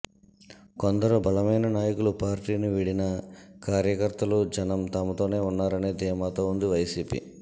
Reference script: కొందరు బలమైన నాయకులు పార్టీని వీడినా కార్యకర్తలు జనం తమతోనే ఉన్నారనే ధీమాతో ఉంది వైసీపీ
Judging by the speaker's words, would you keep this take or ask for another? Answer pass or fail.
pass